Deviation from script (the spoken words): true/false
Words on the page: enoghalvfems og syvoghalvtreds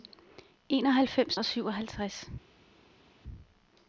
false